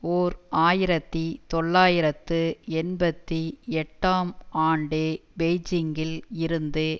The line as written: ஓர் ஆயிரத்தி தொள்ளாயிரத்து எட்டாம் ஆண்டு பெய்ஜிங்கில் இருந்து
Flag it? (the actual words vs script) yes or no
yes